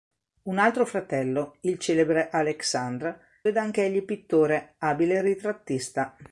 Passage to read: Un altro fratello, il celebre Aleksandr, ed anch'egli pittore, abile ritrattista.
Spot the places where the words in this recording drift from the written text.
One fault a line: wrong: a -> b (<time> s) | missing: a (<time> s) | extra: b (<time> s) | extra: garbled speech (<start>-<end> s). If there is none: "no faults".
no faults